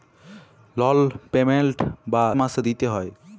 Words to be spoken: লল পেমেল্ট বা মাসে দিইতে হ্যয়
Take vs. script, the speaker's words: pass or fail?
pass